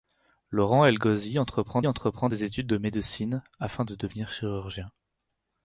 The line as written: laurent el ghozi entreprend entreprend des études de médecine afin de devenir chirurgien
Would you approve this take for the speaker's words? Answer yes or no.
yes